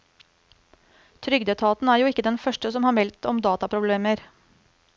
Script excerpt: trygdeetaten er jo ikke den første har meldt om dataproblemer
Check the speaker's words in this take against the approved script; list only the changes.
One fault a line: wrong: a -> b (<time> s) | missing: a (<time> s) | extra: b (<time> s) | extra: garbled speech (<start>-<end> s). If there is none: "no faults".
extra: som (2.8 s)